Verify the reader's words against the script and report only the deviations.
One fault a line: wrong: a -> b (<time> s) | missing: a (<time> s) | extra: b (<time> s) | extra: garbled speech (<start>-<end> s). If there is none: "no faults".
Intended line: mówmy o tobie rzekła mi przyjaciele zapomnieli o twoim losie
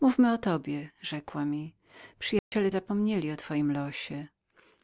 no faults